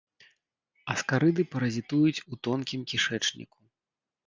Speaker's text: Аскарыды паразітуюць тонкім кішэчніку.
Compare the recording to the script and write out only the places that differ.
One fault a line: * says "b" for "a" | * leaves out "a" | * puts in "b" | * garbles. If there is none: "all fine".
* puts in "у"